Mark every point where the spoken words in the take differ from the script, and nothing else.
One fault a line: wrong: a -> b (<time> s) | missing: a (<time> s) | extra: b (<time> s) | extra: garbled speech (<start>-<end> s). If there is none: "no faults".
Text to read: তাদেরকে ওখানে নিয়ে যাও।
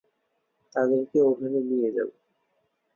no faults